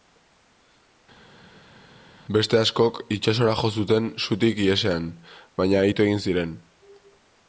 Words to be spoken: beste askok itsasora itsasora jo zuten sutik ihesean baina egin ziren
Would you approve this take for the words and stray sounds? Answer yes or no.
no